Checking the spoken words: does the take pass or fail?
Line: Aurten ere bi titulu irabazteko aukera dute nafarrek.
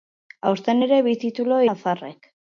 fail